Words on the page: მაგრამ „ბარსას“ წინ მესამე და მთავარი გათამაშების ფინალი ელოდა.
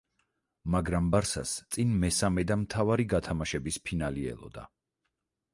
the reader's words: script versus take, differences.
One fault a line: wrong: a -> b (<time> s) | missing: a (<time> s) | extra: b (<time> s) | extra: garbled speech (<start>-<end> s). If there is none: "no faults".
no faults